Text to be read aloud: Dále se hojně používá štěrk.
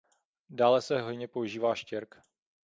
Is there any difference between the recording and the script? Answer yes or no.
no